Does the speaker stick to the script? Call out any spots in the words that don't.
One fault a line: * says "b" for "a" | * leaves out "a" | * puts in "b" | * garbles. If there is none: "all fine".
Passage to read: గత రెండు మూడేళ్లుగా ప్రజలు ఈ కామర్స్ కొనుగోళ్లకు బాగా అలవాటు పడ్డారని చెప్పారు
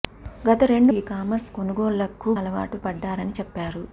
* leaves out "మూడేళ్లుగా ప్రజలు"
* leaves out "బాగా"